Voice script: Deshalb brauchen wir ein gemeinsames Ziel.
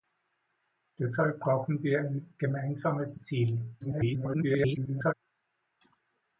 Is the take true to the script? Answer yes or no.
no